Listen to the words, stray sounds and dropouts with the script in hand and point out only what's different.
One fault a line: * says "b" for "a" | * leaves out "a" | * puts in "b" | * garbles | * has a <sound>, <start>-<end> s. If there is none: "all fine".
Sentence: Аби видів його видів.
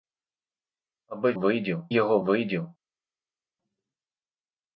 all fine